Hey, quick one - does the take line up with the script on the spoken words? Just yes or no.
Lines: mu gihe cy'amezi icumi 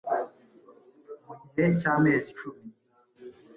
yes